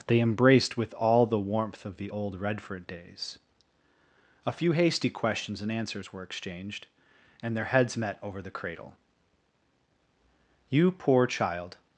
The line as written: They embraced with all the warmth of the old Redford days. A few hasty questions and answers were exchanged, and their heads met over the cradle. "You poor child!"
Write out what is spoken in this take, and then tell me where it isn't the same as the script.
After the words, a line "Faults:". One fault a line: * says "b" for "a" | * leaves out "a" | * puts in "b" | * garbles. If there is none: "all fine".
They embraced with all the warmth of the old Redford days. A few hasty questions and answers were exchanged, and their heads met over the cradle. "You poor child!"
Faults:
all fine